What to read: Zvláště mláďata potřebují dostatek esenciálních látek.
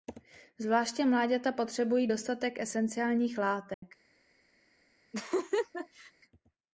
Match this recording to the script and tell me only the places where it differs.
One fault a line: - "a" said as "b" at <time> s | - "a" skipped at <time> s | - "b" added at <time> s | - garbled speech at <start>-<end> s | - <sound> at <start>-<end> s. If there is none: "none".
- dropout at 3.7-3.8 s
- laugh at 5.1-6.1 s